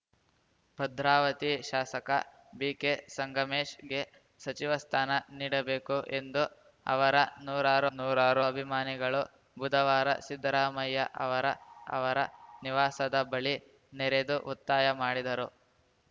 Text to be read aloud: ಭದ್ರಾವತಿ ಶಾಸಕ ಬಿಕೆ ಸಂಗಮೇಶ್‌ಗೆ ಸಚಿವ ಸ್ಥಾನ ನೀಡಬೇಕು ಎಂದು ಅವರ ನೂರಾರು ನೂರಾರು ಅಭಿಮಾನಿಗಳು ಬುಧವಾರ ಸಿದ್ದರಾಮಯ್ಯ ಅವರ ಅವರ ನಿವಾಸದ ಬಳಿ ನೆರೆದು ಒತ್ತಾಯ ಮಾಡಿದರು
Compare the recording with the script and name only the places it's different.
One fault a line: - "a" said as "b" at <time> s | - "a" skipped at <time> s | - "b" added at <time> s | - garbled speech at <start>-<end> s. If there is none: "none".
none